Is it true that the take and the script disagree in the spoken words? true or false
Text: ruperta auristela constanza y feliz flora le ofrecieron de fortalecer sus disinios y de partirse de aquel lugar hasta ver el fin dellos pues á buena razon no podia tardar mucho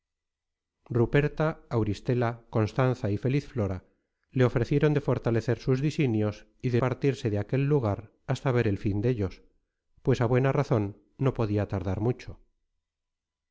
false